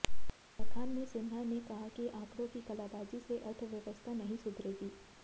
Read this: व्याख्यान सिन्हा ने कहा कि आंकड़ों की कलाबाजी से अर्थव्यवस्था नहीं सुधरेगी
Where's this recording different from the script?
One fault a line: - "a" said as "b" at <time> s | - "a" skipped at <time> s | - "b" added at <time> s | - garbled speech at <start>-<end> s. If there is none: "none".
- "में" added at 0.9 s